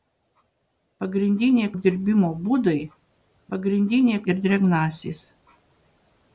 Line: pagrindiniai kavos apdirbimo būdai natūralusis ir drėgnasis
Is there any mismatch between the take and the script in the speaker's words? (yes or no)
yes